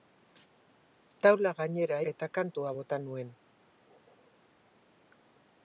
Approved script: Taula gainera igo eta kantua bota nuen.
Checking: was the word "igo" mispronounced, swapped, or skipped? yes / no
yes